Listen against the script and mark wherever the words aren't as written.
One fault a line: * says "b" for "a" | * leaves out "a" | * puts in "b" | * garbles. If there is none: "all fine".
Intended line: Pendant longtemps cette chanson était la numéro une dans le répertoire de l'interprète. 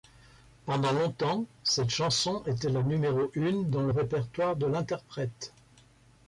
all fine